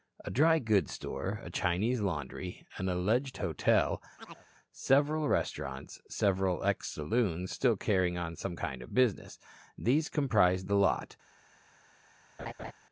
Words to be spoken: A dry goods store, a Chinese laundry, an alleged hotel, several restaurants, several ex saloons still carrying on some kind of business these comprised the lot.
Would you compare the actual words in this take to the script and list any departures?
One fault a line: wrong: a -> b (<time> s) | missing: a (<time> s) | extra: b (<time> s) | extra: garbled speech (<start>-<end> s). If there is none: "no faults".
no faults